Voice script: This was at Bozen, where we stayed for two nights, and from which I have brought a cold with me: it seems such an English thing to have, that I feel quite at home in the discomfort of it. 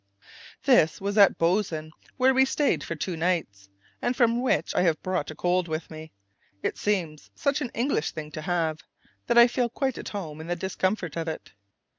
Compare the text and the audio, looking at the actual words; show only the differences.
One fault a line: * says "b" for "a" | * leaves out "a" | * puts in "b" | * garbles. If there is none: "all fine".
all fine